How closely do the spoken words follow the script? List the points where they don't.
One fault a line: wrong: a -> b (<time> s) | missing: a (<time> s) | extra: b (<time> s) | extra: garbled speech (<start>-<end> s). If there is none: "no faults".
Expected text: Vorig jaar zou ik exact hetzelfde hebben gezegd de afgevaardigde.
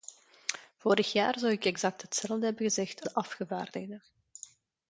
no faults